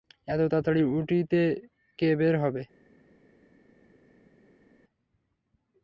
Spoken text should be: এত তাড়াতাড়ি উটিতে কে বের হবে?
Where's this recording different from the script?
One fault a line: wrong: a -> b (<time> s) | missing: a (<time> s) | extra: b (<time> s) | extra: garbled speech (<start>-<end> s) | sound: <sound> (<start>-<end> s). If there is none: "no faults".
no faults